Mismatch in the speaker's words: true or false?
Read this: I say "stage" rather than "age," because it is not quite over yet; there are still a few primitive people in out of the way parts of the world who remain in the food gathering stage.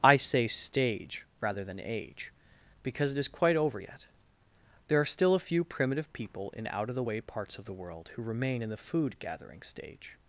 true